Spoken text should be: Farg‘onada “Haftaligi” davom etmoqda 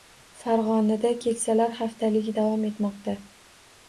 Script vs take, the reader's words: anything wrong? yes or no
yes